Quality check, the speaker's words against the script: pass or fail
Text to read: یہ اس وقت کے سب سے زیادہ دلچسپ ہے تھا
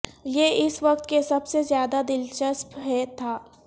pass